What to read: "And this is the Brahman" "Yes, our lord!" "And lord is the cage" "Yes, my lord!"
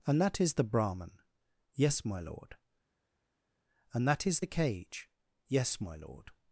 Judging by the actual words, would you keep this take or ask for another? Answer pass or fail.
fail